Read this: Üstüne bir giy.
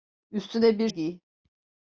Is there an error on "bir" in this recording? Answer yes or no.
no